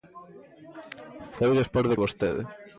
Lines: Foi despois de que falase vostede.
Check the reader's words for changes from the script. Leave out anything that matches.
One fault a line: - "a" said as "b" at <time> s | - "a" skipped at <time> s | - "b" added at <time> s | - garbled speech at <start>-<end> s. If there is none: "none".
- "que falase" skipped at 1.9 s